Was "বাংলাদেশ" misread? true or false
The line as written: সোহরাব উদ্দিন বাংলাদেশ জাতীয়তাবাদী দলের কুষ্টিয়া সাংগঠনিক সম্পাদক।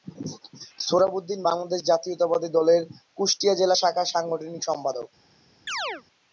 false